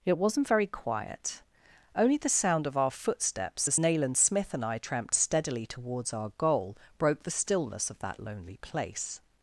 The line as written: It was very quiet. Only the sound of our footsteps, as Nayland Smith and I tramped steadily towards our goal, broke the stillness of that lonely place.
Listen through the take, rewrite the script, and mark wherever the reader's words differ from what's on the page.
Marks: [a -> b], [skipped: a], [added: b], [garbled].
It [was -> wasn't] very quiet. Only the sound of our footsteps, as Nayland Smith and I tramped steadily towards our goal, broke the stillness of that lonely place.